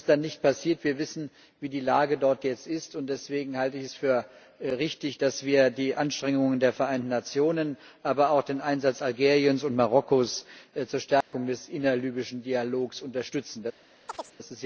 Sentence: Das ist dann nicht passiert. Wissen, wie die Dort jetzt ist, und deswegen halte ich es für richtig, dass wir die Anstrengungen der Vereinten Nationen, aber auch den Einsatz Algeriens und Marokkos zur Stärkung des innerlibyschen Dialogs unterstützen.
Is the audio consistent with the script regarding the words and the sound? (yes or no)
no